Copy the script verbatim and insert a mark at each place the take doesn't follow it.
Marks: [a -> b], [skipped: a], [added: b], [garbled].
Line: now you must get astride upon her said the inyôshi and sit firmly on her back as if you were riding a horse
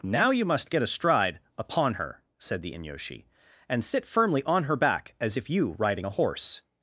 now you must get astride upon her said the inyôshi and sit firmly on her back as if you [skipped: were] riding a horse